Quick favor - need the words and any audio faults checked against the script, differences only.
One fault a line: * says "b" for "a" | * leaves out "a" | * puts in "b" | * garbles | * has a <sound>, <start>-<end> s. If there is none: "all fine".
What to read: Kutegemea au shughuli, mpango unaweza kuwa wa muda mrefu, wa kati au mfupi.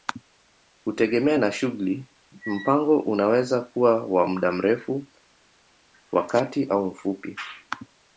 * says "na" for "au"